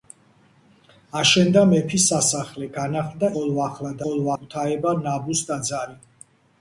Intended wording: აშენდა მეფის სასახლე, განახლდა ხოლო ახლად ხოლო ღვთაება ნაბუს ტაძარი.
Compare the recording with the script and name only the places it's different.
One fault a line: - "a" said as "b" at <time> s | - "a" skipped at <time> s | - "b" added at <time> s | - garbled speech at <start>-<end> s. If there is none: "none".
none